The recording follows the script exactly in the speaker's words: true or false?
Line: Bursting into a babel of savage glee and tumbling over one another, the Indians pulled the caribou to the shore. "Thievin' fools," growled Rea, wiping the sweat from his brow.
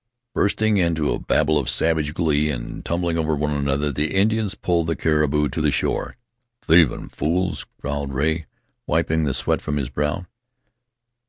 true